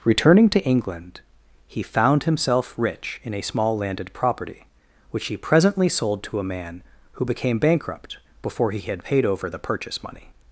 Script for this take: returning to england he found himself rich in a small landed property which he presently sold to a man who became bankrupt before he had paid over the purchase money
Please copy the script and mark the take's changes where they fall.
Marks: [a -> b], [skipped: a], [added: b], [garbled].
returning to england he found himself rich in a small landed property which he presently sold to a man who became bankrupt before he had paid over the purchase money